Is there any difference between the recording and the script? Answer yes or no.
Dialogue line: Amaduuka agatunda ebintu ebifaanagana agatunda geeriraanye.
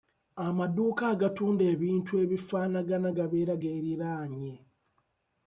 yes